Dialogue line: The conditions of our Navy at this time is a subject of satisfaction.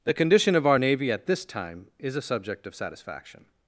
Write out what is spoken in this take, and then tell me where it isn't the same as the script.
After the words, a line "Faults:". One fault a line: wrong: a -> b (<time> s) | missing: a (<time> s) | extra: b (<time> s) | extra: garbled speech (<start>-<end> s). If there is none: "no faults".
The condition of our Navy at this time is a subject of satisfaction.
Faults:
wrong: conditions -> condition (0.1 s)